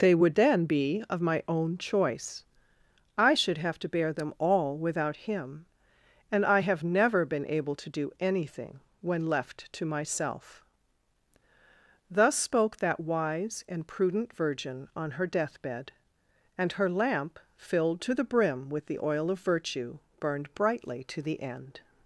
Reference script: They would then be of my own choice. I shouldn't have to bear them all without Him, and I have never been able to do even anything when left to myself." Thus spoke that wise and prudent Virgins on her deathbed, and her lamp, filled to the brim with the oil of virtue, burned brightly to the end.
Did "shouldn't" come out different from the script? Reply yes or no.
yes